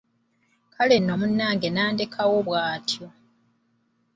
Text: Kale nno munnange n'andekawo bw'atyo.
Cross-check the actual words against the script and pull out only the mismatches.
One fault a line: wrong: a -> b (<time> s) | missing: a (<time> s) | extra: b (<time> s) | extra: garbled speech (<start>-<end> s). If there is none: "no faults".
no faults